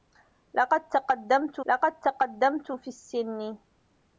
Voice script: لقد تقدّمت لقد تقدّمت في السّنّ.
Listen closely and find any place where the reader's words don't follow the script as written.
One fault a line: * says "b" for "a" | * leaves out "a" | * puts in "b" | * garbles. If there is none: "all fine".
all fine